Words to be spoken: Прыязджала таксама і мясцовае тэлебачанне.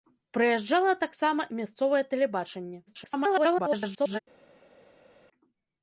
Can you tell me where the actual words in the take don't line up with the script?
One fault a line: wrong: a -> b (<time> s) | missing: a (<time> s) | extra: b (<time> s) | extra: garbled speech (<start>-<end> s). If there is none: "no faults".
extra: garbled speech (2.9-4.2 s)